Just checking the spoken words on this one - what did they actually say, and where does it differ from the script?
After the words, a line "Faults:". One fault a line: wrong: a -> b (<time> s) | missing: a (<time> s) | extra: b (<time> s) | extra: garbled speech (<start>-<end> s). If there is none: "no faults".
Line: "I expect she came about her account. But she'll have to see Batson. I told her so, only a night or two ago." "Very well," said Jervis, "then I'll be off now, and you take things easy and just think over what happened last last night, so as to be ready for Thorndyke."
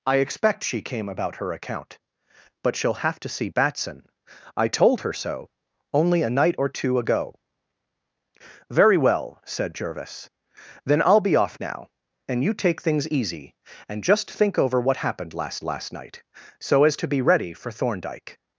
"I expect she came about her account. But she'll have to see Batson. I told her so, only a night or two ago." "Very well," said Jervis, "then I'll be off now, and you take things easy and just think over what happened last last night, so as to be ready for Thorndyke."
Faults:
no faults